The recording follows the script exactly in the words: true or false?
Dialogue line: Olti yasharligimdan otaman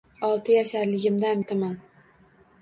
true